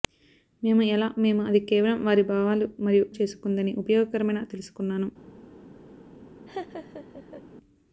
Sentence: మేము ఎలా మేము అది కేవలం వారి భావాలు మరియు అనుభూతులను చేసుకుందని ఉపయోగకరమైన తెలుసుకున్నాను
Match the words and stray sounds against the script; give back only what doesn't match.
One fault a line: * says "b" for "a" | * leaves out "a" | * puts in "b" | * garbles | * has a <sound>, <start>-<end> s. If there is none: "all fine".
* leaves out "అనుభూతులను"
* has a laugh, 6.5-7.4 s